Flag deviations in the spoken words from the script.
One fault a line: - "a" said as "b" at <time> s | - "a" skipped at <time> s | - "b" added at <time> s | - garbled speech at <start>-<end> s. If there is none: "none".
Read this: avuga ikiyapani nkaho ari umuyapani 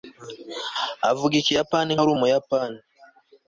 - "nkaho" skipped at 1.9 s